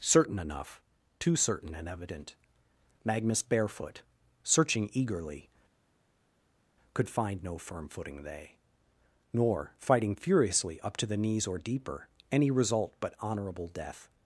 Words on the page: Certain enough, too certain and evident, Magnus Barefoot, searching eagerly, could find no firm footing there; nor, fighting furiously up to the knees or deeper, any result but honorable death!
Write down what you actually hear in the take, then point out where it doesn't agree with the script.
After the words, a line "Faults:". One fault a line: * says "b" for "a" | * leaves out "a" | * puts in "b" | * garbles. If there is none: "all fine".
Certain enough, too certain and evident, Magnus Barefoot, searching eagerly, could find no firm footing they; nor, fighting furiously up to the knees or deeper, any result but honorable death!
Faults:
* says "they" for "there"